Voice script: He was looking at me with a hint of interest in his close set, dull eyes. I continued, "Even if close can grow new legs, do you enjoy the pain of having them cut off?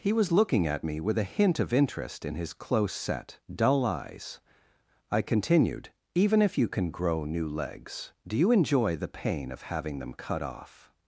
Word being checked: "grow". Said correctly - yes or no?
yes